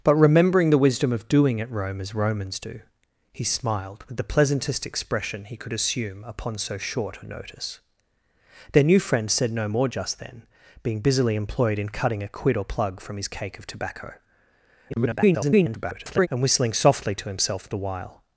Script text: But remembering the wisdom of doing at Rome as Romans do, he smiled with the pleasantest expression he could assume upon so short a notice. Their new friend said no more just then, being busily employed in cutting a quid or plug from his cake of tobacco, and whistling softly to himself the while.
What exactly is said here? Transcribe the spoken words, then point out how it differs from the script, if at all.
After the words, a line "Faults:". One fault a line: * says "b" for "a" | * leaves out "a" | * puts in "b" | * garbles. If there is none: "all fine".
But remembering the wisdom of doing at Rome as Romans do, he smiled with the pleasantest expression he could assume upon so short a notice. Their new friend said no more just then, being busily employed in cutting a quid or plug from his cake of tobacco, [garbled] and whistling softly to himself the while.
Faults:
* garbles